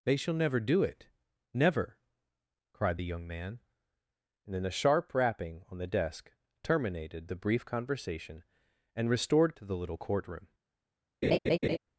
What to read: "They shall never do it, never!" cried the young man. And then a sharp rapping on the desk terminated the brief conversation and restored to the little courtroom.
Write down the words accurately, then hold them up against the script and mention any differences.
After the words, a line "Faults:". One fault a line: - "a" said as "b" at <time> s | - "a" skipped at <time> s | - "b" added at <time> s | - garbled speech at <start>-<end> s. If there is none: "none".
"They shall never do it, never!" cried the young man. And then a sharp rapping on the desk terminated the brief conversation and restored to the little courtroom.
Faults:
none